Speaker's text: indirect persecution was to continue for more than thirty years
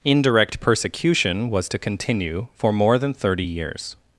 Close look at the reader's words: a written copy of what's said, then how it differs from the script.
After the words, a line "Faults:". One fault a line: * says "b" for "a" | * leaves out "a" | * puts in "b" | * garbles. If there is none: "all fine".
indirect persecution was to continue for more than thirty years
Faults:
all fine